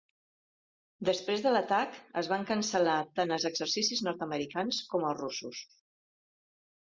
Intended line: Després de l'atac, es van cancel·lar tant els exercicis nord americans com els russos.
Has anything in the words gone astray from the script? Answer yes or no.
no